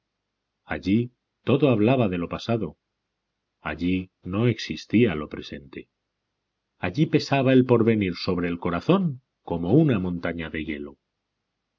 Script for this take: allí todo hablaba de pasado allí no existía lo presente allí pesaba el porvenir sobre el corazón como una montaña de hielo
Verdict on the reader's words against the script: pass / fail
fail